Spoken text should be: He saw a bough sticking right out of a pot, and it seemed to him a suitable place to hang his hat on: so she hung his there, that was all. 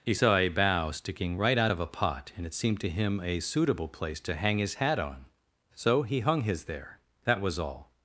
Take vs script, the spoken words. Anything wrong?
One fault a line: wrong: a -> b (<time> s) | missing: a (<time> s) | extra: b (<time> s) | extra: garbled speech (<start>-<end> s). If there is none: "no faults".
wrong: she -> he (6.0 s)